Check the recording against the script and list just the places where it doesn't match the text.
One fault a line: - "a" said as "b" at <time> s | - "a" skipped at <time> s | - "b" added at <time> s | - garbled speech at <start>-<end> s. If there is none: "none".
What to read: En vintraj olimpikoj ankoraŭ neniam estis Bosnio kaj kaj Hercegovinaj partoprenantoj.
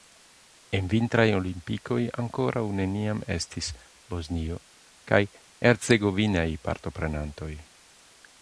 - "kaj" skipped at 5.2 s